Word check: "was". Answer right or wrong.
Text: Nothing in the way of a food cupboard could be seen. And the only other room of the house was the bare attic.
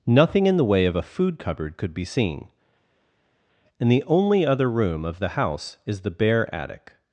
wrong